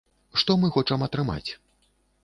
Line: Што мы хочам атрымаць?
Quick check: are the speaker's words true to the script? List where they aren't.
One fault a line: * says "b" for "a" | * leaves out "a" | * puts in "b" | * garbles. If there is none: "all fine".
all fine